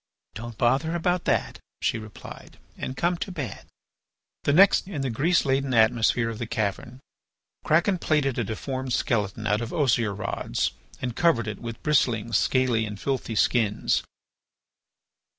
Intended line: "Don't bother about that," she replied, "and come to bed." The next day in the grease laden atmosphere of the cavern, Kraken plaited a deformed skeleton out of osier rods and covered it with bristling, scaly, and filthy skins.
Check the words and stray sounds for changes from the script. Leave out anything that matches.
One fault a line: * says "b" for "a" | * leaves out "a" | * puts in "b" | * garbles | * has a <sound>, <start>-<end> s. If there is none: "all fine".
* leaves out "day"